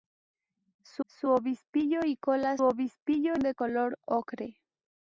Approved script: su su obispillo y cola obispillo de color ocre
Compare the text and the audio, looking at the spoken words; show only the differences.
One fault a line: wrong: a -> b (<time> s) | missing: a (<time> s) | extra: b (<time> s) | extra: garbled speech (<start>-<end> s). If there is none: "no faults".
no faults